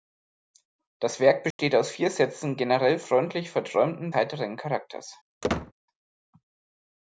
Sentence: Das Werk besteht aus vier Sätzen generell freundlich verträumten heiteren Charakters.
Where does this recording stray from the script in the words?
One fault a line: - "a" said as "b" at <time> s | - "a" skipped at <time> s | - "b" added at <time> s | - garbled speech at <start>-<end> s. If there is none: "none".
none